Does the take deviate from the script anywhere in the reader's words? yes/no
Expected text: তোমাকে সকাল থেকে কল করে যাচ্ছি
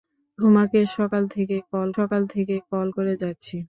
yes